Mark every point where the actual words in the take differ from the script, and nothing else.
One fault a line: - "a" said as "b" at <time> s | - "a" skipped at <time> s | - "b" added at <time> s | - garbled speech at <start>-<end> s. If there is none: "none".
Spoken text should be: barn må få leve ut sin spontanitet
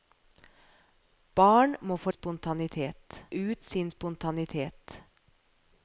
- "leve" said as "spontanitet" at 2.1 s